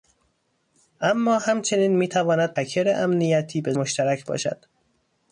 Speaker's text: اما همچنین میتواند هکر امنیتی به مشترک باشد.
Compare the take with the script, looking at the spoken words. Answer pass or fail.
pass